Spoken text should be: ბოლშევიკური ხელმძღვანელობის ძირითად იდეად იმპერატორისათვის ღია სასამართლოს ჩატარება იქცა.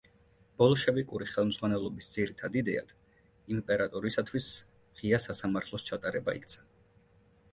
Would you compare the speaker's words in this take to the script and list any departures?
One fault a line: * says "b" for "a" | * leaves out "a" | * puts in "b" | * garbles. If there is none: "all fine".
all fine